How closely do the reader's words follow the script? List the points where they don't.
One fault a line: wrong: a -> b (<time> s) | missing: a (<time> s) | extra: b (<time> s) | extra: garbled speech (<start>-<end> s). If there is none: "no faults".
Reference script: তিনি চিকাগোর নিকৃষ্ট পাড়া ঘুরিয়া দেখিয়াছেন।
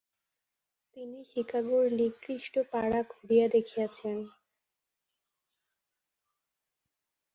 no faults